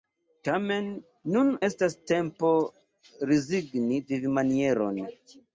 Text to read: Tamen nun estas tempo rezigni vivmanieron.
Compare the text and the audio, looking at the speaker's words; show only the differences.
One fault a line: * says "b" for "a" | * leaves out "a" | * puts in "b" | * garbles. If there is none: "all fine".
all fine